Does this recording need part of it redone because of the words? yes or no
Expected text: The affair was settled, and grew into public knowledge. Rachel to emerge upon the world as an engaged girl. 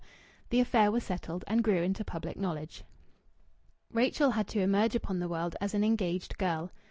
yes